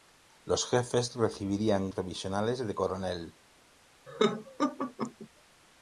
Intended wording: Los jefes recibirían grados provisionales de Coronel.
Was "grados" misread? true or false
true